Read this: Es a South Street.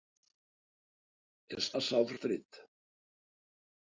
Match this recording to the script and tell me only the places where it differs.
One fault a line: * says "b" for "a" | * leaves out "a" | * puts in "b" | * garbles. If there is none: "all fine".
all fine